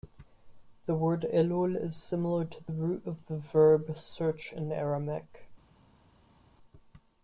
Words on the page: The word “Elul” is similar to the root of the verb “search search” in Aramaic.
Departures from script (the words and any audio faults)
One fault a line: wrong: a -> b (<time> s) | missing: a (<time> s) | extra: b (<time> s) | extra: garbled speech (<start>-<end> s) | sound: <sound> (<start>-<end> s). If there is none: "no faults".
missing: search (4.5 s)